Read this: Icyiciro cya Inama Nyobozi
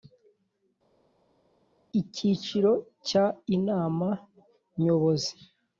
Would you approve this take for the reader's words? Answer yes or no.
yes